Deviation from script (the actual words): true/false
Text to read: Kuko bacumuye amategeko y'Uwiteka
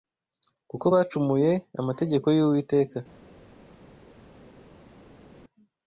false